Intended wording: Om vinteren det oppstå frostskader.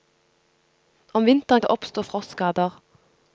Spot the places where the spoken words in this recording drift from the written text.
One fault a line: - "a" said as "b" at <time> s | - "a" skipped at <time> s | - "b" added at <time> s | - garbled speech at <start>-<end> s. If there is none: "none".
none